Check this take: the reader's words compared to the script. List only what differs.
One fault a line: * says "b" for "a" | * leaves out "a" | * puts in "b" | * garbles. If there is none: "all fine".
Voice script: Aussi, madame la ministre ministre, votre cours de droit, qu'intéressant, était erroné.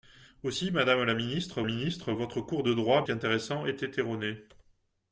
all fine